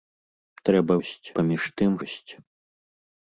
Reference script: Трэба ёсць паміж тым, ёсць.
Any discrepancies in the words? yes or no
no